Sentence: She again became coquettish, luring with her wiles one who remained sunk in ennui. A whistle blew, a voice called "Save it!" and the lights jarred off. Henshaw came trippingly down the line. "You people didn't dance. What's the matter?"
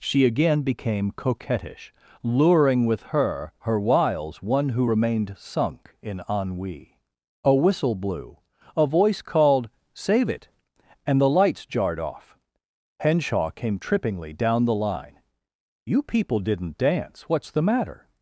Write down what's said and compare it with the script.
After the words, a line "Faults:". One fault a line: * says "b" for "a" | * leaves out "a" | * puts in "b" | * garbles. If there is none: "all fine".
She again became coquettish, luring with her her wiles one who remained sunk in ennui. A whistle blew, a voice called "Save it!" and the lights jarred off. Henshaw came trippingly down the line. "You people didn't dance. What's the matter?"
Faults:
* puts in "her"